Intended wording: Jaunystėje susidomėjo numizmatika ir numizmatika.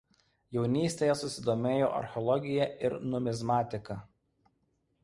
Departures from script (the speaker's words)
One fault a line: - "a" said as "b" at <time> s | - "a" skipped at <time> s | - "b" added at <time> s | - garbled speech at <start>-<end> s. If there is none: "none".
- "numizmatika" said as "archeologija" at 2.0 s